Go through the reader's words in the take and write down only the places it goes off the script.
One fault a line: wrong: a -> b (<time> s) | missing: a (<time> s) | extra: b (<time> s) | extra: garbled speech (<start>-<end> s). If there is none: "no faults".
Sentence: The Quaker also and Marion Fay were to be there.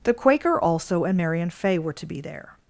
no faults